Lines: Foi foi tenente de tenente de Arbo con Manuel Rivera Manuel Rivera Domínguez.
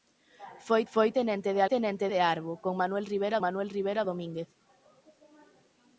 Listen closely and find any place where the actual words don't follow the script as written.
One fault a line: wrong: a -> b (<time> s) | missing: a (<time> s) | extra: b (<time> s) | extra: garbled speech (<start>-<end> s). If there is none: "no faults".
no faults